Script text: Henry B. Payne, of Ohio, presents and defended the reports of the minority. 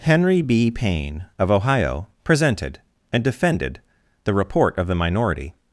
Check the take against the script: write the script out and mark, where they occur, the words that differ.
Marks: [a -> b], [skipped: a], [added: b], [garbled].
Henry B. Payne, of Ohio, [presents -> presented] and defended the [reports -> report] of the minority.